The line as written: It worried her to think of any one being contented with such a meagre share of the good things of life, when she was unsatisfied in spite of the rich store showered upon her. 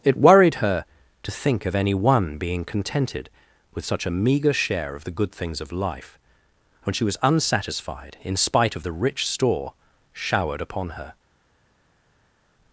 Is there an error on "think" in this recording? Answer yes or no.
no